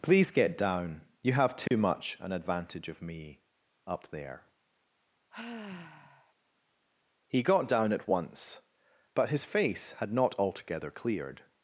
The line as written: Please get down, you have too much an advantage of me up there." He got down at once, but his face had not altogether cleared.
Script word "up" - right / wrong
right